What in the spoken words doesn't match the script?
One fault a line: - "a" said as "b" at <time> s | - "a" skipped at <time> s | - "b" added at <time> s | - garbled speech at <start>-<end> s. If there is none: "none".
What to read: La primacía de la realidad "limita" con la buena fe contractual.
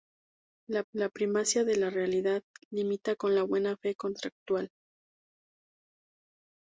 - "la" added at 0.9 s